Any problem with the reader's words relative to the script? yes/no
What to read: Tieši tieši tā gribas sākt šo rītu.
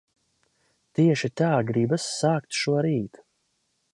yes